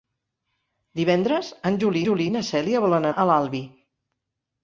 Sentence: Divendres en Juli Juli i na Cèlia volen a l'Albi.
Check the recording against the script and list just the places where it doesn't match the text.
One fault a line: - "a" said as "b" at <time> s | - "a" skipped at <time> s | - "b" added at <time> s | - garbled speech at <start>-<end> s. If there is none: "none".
none